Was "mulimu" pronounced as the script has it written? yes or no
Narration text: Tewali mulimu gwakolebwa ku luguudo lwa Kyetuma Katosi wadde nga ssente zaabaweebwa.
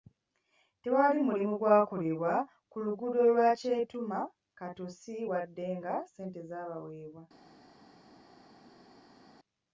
yes